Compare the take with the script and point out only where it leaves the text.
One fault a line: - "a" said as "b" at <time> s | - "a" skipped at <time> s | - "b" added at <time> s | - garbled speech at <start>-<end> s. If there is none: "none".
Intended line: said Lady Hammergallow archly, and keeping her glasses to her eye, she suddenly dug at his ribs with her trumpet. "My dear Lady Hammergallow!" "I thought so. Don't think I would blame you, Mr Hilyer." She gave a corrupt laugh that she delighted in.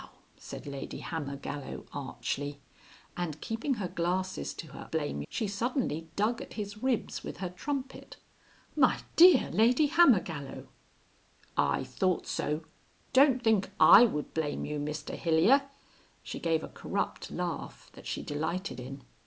- "eye" said as "blame" at 4.9 s